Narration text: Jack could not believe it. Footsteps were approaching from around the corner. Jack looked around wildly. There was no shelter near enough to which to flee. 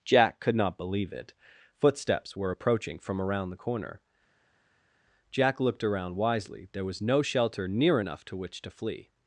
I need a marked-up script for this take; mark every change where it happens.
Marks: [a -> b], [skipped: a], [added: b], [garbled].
Jack could not believe it. Footsteps were approaching from around the corner. Jack looked around [wildly. -> wisely] There was no shelter near enough to which to flee.